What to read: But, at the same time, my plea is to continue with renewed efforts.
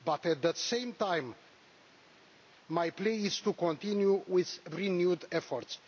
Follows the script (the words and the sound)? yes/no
yes